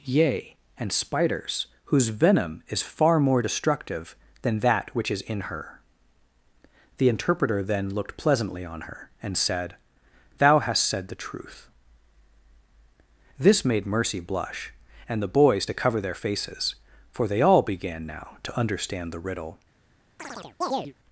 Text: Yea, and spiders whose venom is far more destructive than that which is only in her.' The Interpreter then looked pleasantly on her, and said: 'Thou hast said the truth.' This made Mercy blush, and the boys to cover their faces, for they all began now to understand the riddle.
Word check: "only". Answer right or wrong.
wrong